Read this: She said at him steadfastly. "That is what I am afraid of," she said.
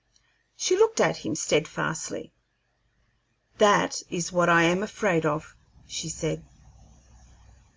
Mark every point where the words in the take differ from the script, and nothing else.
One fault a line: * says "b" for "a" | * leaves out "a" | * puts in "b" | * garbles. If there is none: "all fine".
* says "looked" for "said"